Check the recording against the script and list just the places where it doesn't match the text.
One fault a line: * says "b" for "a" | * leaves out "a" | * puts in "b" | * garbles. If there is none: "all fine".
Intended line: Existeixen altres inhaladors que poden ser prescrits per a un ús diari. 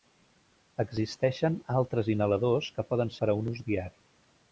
* leaves out "ser prescrits"